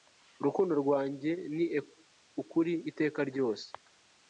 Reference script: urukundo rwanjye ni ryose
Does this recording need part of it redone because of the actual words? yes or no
yes